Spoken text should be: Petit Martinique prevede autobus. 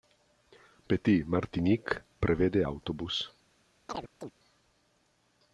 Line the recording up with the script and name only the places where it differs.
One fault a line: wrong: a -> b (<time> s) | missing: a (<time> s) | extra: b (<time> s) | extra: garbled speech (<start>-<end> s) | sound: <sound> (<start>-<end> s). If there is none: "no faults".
sound: chirp (3.9-4.3 s)